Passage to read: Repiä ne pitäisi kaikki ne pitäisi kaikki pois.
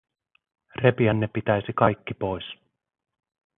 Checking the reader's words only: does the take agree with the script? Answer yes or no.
no